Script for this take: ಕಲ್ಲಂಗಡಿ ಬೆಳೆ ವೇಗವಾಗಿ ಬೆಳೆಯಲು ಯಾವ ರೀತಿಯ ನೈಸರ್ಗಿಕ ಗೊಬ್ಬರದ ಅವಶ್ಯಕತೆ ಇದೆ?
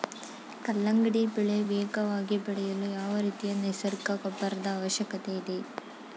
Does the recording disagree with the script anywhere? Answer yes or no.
no